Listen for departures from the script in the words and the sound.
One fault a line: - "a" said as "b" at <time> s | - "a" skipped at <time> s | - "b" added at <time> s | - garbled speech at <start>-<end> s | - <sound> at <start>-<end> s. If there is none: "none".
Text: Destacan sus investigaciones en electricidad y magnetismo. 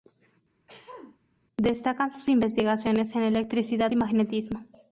- throat clearing at 0.7-1.2 s